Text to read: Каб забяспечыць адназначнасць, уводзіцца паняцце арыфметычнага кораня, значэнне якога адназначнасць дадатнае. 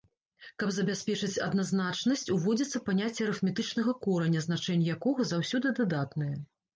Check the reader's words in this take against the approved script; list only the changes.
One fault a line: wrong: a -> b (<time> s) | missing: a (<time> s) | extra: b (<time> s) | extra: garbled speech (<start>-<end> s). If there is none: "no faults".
wrong: адназначнасць -> заўсёды (5.3 s)